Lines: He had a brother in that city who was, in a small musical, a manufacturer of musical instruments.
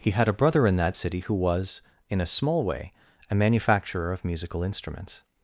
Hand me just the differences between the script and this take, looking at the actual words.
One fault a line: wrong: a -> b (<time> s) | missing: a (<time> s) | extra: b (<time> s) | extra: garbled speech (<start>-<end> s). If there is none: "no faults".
wrong: musical -> way (2.6 s)